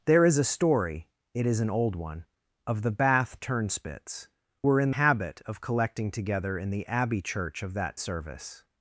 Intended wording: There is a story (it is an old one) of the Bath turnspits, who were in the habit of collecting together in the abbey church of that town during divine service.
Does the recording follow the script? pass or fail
fail